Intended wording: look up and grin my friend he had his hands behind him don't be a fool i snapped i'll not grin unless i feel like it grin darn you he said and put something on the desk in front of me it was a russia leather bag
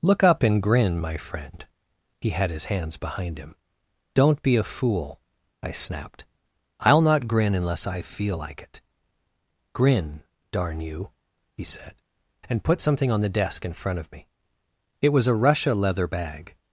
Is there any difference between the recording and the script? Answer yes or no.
no